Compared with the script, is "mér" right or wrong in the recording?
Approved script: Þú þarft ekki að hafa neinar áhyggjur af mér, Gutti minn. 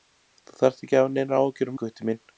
wrong